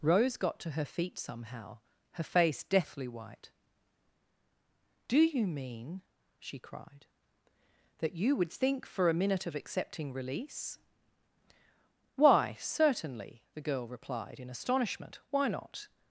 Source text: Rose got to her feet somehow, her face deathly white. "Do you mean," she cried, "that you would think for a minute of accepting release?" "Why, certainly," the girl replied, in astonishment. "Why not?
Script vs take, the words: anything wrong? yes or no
no